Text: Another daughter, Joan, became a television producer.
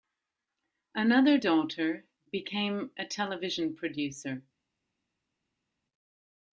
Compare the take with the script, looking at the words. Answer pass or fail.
fail